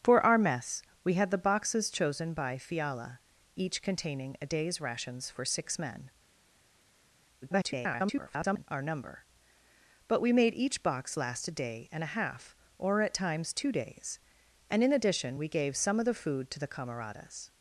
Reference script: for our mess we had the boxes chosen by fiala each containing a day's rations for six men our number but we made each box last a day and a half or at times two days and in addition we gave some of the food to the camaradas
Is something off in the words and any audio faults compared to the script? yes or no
yes